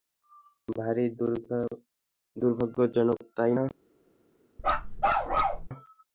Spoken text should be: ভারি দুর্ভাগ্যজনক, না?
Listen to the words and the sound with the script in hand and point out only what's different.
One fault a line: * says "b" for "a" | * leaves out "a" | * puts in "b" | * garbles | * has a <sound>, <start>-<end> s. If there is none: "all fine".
* puts in "তাই"
* has a bark, 4.6-5.7 s